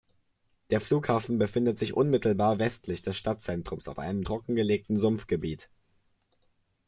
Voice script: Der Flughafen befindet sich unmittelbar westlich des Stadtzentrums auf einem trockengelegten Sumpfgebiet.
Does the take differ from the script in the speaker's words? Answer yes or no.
no